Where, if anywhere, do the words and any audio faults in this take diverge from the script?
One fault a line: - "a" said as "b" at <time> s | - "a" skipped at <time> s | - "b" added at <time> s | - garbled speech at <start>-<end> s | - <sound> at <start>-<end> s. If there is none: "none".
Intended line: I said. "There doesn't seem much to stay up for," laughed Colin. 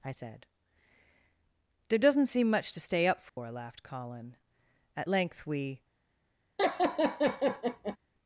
- dropout at 3.3-3.4 s
- "At length we" added at 5.0 s
- laugh at 6.6-8.0 s